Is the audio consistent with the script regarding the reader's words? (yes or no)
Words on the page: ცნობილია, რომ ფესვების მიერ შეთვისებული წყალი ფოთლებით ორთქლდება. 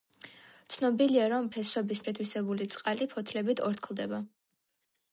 no